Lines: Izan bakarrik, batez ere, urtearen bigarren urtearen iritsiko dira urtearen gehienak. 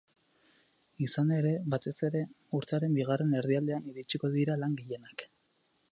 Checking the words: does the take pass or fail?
fail